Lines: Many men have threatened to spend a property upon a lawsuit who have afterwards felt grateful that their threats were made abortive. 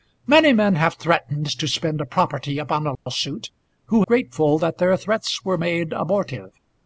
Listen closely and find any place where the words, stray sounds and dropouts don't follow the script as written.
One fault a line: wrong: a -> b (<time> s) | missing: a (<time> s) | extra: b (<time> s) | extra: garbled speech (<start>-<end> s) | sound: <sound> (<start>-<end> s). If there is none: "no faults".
sound: dropout (2.9-3.1 s)
missing: have afterwards felt (4.0 s)